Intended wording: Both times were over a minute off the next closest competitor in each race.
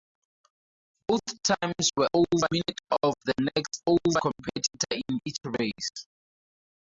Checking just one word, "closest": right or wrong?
wrong